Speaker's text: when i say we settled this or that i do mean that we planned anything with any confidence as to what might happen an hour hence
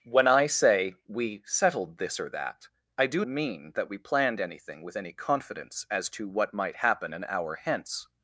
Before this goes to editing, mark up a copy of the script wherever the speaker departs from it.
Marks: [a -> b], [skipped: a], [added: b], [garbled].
when i say we settled this or that i do mean that we planned anything with any confidence as to what might happen an hour hence